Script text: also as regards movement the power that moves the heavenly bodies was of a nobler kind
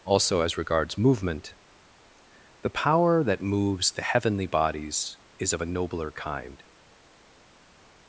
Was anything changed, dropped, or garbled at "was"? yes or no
yes